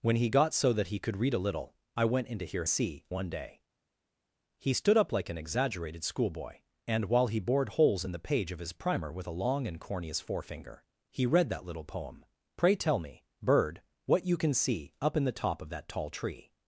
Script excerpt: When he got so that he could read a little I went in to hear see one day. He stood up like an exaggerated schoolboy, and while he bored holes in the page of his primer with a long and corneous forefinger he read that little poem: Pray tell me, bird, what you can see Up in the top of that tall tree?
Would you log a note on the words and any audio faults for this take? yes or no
no